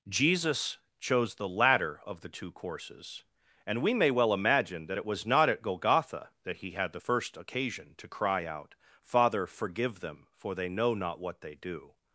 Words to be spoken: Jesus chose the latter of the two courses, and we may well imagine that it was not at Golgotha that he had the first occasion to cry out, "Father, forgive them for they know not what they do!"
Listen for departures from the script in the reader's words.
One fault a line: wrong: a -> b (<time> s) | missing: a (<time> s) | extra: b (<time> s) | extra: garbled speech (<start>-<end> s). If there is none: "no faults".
no faults